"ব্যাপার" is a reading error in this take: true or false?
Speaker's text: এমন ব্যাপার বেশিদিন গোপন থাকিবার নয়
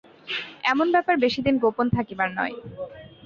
false